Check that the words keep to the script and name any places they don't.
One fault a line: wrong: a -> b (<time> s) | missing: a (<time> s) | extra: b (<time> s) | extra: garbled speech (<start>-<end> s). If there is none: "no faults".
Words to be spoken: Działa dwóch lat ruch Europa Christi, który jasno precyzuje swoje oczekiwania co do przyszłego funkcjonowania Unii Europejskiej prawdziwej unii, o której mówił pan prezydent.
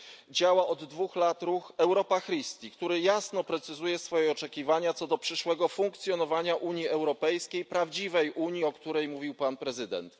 extra: od (0.7 s)